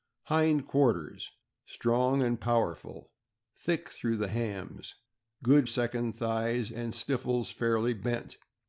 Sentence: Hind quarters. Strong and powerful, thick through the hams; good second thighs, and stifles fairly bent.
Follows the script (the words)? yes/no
yes